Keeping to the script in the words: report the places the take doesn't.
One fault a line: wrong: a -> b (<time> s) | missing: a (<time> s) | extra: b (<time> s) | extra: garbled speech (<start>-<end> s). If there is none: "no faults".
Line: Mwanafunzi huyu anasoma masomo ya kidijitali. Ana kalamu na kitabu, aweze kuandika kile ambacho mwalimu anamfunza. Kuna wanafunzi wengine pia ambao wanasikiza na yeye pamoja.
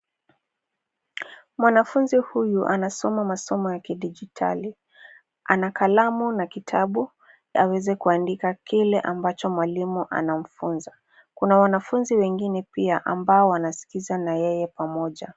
no faults